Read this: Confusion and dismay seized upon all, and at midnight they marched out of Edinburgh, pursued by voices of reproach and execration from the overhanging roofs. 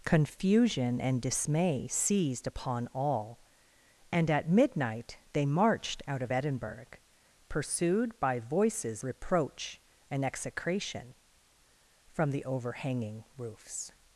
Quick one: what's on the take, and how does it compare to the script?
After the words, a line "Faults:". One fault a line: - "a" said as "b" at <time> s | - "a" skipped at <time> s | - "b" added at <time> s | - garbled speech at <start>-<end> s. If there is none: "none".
Confusion and dismay seized upon all, and at midnight they marched out of Edinburgh, pursued by voices reproach and execration from the overhanging roofs.
Faults:
- "of" skipped at 9.0 s